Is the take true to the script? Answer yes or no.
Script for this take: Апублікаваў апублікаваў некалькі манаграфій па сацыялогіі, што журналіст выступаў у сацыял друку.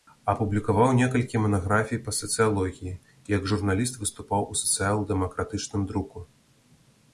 no